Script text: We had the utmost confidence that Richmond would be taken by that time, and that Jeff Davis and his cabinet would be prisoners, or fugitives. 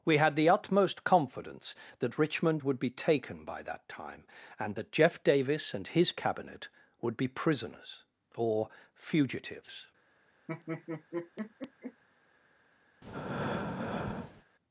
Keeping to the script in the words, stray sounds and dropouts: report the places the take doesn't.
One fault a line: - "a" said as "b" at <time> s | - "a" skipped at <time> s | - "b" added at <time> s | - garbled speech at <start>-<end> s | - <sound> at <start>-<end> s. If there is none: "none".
- laugh at 10.5-12.0 s
- breath at 13.0-14.4 s